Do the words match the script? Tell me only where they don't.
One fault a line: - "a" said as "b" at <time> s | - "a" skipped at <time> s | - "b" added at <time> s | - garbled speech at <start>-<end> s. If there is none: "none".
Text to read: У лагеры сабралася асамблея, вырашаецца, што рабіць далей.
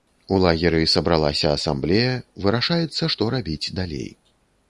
none